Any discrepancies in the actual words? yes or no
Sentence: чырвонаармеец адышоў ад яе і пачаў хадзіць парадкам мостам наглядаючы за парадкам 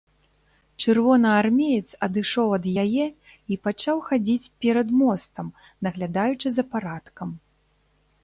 yes